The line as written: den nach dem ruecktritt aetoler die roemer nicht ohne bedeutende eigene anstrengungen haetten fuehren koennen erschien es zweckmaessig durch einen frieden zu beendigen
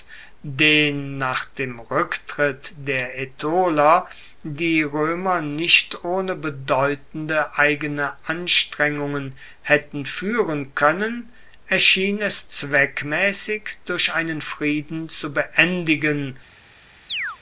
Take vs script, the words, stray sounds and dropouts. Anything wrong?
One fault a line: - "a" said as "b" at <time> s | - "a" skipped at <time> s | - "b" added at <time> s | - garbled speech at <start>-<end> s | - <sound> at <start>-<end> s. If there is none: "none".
- "der" added at 2.8 s
- chirp at 17.1-17.4 s